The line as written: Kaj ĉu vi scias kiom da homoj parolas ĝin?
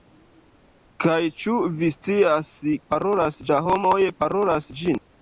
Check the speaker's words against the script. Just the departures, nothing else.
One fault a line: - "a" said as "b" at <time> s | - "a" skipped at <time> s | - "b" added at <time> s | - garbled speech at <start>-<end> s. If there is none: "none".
- "kiom" said as "parolas" at 3.0 s